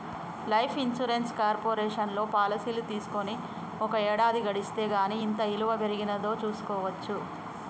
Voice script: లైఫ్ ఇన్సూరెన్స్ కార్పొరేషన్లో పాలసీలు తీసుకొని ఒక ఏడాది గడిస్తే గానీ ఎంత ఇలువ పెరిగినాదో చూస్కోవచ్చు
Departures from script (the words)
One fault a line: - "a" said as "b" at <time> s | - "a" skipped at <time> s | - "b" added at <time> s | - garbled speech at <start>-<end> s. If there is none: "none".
none